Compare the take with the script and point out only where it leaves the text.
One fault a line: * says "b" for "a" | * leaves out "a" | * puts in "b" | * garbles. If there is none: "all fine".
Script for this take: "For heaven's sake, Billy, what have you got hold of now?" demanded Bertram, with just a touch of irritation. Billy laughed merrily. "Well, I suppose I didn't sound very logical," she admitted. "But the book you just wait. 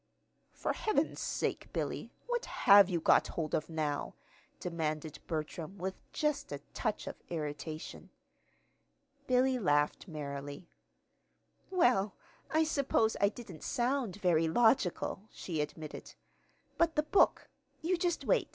all fine